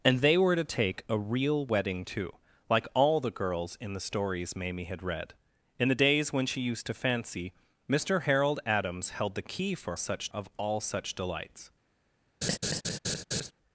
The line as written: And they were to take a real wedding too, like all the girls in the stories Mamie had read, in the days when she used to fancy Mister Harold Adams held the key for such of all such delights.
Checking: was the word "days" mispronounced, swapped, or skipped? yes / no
no